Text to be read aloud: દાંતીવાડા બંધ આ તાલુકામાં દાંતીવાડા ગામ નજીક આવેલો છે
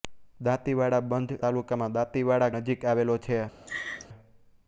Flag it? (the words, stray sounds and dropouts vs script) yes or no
yes